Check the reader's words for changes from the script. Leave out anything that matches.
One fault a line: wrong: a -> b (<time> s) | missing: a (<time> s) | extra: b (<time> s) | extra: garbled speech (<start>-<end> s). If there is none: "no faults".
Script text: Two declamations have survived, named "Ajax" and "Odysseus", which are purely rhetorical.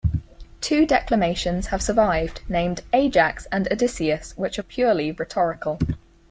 no faults